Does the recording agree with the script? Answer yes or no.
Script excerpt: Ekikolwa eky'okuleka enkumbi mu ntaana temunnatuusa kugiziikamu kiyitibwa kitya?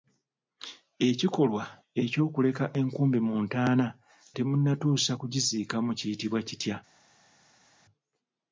yes